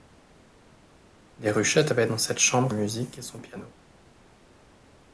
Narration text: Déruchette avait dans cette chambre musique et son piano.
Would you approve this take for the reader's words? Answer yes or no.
yes